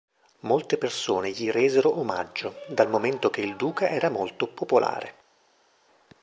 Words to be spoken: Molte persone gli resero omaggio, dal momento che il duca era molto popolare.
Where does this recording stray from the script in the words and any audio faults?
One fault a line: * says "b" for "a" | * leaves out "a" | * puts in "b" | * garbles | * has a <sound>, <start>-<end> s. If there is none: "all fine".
all fine